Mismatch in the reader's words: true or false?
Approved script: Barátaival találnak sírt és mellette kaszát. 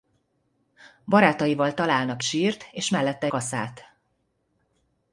false